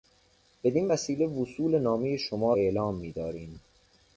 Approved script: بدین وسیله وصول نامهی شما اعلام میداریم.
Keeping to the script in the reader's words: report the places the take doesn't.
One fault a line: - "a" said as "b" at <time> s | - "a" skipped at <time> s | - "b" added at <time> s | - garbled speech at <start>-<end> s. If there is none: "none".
none